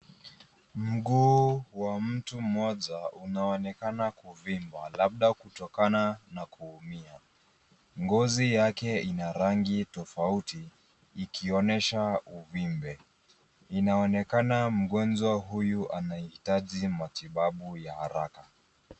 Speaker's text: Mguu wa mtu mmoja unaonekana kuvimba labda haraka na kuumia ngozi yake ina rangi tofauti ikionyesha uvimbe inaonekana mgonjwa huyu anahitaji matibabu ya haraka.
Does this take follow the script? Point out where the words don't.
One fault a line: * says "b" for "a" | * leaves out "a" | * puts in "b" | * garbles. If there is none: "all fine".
* says "kutokana" for "haraka"